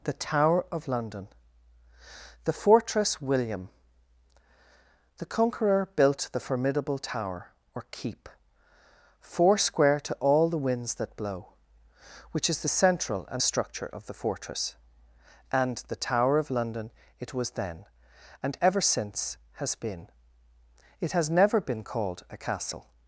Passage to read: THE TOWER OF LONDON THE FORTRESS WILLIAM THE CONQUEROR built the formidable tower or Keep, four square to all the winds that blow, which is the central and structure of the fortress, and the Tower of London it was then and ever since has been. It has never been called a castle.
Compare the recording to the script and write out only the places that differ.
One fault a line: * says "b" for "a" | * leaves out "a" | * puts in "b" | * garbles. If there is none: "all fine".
all fine